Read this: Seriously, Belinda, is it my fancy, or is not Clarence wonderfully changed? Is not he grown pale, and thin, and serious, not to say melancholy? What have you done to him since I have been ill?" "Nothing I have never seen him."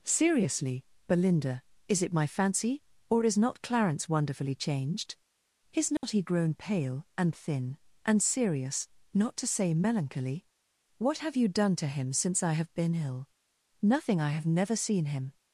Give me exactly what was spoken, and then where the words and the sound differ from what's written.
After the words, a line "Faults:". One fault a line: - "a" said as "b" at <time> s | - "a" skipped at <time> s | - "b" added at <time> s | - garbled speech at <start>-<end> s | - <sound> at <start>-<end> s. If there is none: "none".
Seriously, Belinda, is it my fancy, or is not Clarence wonderfully changed? Is not he grown pale, and thin, and serious, not to say melancholy? What have you done to him since I have been ill?" "Nothing I have never seen him."
Faults:
- dropout at 6.0-6.0 s